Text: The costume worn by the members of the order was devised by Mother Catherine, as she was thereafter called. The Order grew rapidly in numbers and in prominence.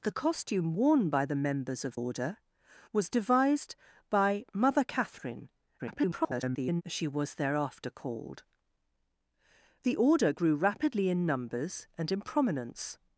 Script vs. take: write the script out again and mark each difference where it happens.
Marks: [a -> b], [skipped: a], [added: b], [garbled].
The costume worn by the members of [skipped: the] order was devised by Mother Catherine, [garbled] as she was thereafter called. The Order grew rapidly in numbers and in prominence.